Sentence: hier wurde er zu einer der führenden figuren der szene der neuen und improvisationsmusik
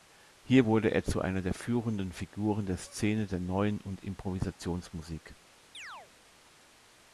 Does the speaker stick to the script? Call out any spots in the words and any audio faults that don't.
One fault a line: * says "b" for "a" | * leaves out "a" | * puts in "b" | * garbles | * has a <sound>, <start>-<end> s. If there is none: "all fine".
* has a chirp, 5.7-6.1 s